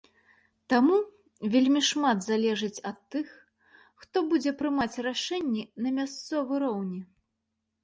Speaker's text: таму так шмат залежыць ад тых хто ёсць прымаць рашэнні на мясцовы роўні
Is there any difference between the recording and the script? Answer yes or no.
yes